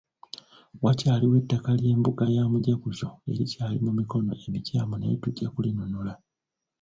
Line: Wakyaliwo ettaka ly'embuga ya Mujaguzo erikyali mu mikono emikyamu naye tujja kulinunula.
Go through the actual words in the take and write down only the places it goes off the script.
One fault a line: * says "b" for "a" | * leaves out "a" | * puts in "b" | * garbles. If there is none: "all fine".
all fine